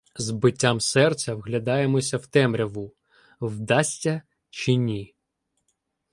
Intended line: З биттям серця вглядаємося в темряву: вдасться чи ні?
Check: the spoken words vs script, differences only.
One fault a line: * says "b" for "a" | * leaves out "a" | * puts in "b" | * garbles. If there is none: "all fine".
all fine